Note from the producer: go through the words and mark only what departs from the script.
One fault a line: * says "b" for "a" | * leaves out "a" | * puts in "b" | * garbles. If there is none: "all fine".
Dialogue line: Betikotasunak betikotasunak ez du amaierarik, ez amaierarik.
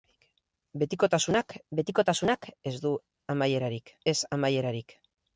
all fine